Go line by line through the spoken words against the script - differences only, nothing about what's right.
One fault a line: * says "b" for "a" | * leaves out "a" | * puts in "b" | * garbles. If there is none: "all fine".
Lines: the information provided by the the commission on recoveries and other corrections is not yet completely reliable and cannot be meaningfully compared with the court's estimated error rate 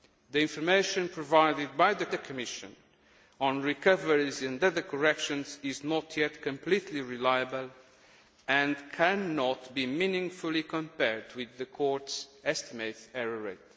all fine